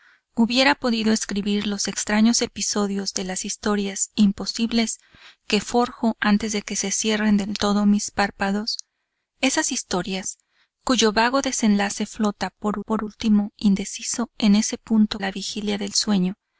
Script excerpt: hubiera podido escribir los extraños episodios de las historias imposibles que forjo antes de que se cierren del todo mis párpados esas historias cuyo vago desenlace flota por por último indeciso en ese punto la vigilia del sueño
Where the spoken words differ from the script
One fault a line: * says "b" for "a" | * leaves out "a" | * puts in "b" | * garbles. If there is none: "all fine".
all fine